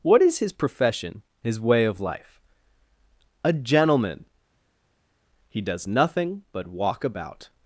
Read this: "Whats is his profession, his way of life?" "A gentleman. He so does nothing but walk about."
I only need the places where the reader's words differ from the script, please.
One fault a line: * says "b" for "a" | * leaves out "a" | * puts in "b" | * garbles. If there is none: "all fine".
* says "What" for "Whats"
* leaves out "so"